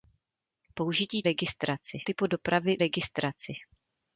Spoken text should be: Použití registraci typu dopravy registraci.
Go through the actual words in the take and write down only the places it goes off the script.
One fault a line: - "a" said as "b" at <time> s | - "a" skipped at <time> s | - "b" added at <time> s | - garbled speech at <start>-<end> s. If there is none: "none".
none